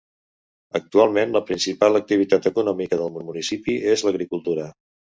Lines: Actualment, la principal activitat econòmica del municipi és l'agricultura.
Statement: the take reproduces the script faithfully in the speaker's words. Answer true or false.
false